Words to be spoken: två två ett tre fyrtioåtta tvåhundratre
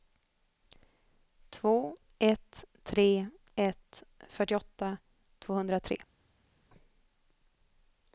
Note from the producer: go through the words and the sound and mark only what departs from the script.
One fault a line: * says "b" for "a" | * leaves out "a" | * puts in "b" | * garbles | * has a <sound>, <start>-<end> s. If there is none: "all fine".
* leaves out "två"
* puts in "ett"